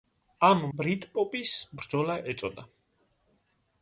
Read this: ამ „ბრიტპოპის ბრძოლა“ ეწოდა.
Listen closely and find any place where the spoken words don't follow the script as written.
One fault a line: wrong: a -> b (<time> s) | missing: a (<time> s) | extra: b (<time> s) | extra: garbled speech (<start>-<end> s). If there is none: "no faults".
no faults